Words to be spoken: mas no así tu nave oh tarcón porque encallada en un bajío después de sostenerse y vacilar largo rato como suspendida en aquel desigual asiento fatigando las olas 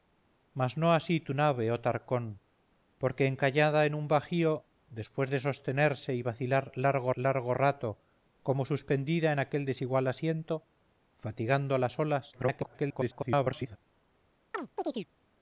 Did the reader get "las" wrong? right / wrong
right